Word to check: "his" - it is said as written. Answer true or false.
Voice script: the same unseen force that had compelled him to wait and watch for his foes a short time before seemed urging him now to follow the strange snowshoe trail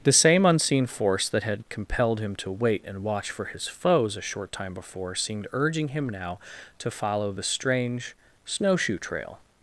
true